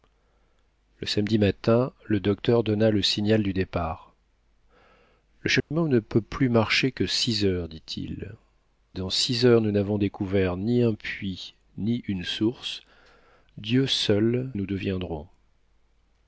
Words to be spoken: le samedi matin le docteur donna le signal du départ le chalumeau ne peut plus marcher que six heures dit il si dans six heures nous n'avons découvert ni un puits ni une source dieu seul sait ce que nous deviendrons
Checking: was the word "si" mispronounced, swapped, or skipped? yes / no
yes